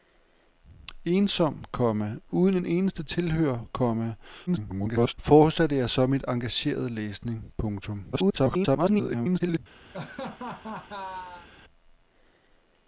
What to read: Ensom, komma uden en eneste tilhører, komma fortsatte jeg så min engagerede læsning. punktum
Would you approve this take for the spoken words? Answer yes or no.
no